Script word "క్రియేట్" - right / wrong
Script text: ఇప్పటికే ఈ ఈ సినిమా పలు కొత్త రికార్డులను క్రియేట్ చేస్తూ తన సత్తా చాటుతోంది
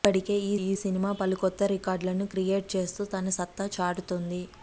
right